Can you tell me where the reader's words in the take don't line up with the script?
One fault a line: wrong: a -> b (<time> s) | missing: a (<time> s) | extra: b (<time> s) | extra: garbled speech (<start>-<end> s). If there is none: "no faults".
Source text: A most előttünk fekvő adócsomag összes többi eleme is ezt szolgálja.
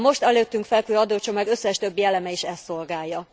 no faults